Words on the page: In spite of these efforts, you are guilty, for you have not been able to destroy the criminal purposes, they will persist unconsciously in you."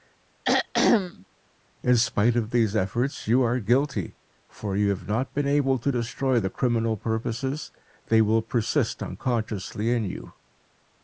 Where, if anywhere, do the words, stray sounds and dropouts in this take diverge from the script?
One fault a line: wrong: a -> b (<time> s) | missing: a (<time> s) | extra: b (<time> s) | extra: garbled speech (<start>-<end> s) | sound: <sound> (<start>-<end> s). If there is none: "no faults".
sound: throat clearing (0.4-1.3 s)